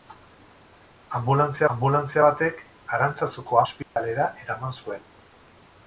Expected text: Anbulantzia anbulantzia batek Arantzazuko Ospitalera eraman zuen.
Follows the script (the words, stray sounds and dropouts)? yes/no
no